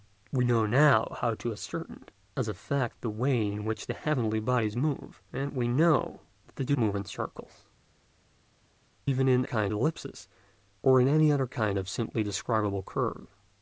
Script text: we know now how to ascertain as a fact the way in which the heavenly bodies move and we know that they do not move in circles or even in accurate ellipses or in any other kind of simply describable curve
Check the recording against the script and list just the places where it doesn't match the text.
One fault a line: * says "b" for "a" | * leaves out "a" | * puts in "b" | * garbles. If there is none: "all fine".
* leaves out "not"
* leaves out "or"
* says "kind" for "accurate"